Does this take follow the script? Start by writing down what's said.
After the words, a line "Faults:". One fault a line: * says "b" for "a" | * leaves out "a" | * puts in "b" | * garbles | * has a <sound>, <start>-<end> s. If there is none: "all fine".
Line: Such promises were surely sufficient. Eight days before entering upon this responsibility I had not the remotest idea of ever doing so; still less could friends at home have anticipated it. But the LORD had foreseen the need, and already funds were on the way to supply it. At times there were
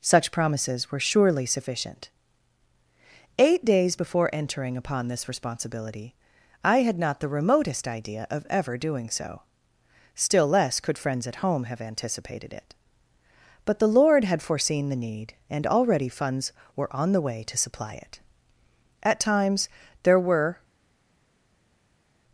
Such promises were surely sufficient. Eight days before entering upon this responsibility I had not the remotest idea of ever doing so; still less could friends at home have anticipated it. But the LORD had foreseen the need, and already funds were on the way to supply it. At times there were
Faults:
all fine